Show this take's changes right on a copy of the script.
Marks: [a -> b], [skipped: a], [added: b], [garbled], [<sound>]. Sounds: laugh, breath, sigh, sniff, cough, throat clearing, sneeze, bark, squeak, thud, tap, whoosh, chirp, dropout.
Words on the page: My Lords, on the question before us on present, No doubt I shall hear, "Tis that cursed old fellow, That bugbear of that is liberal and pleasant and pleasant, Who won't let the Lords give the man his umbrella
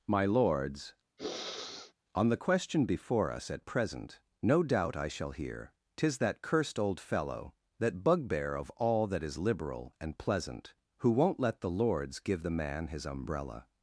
My Lords, [sniff] on the question before us [on -> at] present, No doubt I shall hear, "Tis that cursed old fellow, That bugbear of [added: all] that is liberal and pleasant [skipped: and pleasant,] Who won't let the Lords give the man his umbrella